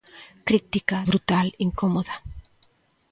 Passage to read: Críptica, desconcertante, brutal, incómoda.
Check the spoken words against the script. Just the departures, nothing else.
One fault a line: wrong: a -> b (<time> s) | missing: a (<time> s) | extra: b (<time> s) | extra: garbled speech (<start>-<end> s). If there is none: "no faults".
missing: desconcertante (1.0 s)